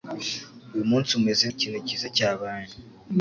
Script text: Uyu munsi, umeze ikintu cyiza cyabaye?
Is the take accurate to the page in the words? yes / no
yes